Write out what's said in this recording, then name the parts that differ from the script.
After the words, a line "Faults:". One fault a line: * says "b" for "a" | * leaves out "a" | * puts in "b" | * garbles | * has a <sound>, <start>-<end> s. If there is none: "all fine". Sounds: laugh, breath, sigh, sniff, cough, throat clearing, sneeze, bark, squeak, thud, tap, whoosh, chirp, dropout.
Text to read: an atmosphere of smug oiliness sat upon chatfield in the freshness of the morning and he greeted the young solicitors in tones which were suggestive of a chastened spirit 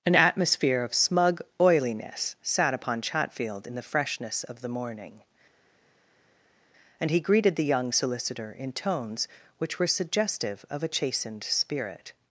an atmosphere of smug oiliness sat upon chatfield in the freshness of the morning and he greeted the young solicitor in tones which were suggestive of a chastened spirit
Faults:
* says "solicitor" for "solicitors"